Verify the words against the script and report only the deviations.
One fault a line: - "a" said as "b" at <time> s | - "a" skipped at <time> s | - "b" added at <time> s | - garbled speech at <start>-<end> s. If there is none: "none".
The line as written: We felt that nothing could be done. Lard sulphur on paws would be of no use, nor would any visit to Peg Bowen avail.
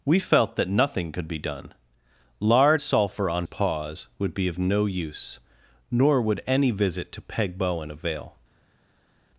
none